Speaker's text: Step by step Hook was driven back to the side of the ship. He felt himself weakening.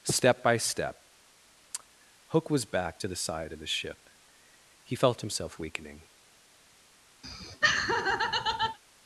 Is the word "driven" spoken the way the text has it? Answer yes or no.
no